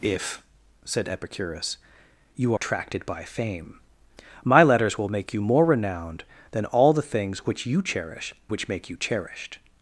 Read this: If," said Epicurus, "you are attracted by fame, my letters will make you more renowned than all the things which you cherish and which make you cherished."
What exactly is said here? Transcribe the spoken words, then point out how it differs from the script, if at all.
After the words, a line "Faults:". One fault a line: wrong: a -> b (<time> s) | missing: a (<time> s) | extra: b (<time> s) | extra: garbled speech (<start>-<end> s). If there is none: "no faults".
If," said Epicurus, "you attracted by fame, my letters will make you more renowned than all the things which you cherish which make you cherished."
Faults:
missing: are (2.5 s)
missing: and (8.3 s)